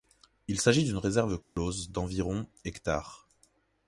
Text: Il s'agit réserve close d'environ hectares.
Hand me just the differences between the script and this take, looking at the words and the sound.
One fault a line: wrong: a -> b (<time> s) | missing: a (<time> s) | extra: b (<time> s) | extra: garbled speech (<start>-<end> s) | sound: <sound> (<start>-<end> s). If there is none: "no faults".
extra: d'une (0.8 s)
sound: dropout (1.4-1.6 s)